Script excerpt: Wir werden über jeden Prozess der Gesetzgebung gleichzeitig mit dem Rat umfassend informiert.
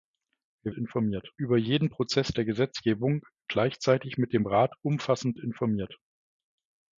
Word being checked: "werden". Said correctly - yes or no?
no